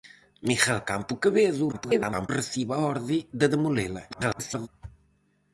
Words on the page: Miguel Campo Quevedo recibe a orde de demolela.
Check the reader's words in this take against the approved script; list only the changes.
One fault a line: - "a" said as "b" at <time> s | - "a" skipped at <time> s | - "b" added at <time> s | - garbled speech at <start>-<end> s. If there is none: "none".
- garbled speech at 1.7-2.3 s
- garbled speech at 4.1-4.7 s